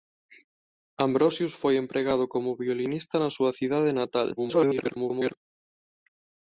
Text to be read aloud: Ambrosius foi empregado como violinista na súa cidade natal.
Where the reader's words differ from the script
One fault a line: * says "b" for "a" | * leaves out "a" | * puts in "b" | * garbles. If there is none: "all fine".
* garbles